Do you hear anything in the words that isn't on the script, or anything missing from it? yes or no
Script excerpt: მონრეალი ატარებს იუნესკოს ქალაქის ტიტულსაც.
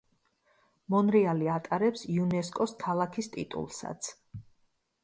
no